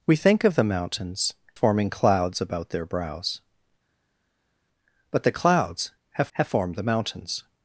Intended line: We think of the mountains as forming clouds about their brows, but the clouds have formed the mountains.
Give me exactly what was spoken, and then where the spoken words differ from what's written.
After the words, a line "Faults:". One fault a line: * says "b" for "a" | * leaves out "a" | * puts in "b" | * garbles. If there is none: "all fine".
We think of the mountains forming clouds about their brows, but the clouds have have formed the mountains.
Faults:
* leaves out "as"
* puts in "have"